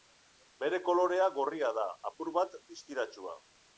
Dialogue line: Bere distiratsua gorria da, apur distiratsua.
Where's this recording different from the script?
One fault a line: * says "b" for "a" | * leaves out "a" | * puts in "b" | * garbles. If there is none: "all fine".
* says "kolorea" for "distiratsua"
* puts in "bat"